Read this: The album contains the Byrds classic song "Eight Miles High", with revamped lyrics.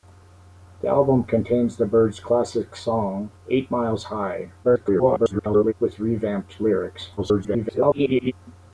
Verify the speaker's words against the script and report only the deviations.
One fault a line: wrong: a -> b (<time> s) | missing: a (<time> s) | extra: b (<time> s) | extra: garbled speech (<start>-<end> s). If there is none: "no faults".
extra: garbled speech (4.6-5.7 s)
extra: garbled speech (7.2-8.3 s)